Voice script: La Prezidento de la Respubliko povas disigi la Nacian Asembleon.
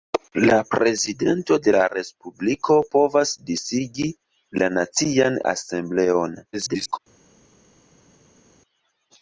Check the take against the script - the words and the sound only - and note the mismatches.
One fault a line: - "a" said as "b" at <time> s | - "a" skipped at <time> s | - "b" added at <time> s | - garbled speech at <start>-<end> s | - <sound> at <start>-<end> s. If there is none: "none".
- garbled speech at 6.5-7.0 s